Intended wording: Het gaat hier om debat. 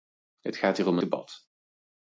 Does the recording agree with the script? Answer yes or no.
yes